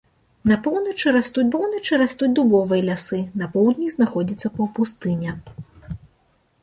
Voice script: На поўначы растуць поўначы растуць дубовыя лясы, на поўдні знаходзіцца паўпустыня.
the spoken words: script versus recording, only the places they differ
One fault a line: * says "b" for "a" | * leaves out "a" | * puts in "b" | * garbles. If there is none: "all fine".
all fine